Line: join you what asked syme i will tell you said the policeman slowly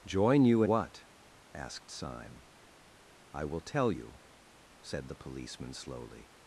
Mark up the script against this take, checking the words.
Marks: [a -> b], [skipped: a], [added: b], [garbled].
join you what asked syme i will tell you said the policeman slowly